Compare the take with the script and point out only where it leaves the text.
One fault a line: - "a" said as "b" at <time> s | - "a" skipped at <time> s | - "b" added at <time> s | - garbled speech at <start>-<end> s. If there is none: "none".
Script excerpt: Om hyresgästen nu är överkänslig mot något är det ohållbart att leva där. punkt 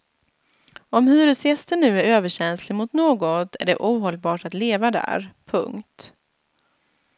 none